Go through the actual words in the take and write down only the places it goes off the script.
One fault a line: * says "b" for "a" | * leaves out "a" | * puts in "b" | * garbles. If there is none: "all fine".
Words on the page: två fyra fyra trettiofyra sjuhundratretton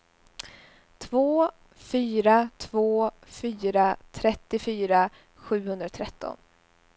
* puts in "två"